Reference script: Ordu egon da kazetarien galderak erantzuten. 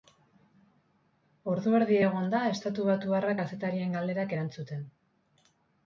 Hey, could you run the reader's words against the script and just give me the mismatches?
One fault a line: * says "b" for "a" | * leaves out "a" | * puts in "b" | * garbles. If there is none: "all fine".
* puts in "erdi"
* puts in "estatubatuarra"